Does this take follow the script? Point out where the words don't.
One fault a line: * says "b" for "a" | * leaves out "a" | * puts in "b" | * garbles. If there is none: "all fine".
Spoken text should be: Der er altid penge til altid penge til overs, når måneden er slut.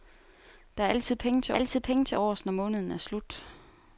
all fine